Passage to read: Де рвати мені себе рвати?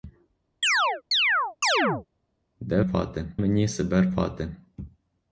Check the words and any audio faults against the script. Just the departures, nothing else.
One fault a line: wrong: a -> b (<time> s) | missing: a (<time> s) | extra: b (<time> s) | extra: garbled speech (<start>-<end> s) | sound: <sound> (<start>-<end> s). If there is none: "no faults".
sound: chirp (0.6-2.1 s)